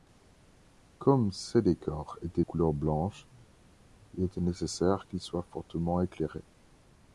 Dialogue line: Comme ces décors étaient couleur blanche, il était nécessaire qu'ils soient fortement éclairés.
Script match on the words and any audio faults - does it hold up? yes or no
yes